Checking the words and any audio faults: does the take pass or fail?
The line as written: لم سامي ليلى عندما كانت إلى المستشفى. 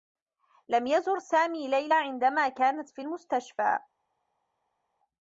fail